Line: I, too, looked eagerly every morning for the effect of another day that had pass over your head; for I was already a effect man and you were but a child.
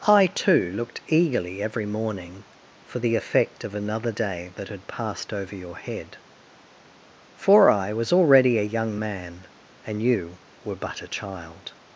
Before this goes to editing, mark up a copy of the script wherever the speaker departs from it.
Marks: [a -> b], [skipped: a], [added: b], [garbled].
I, too, looked eagerly every morning for the effect of another day that had [pass -> passed] over your head; for I was already a [effect -> young] man and you were but a child.